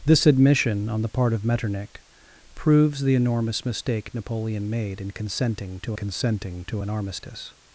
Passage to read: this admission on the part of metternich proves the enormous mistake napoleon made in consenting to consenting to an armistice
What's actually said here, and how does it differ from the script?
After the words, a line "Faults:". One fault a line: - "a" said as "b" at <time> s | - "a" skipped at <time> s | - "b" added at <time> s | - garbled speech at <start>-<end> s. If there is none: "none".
this admission on the part of metternich proves the enormous mistake napoleon made in consenting to consenting to an armistice
Faults:
none